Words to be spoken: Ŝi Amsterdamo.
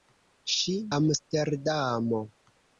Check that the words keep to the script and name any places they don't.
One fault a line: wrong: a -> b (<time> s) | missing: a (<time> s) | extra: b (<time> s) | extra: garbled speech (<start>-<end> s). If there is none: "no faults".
no faults